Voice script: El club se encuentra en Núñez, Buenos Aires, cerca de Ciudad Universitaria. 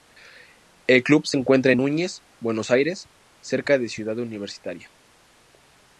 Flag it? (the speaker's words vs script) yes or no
no